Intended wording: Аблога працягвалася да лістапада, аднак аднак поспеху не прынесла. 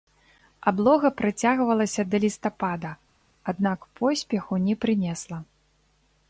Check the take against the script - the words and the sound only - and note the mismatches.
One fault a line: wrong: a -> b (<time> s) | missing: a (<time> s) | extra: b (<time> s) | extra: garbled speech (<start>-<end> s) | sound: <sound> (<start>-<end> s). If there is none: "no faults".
missing: аднак (3.8 s)